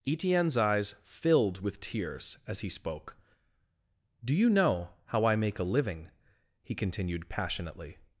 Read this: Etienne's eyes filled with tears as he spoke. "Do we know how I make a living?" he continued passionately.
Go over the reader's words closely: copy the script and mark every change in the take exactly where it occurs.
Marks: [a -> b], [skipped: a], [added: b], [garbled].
Etienne's eyes filled with tears as he spoke. "Do [we -> you] know how I make a living?" he continued passionately.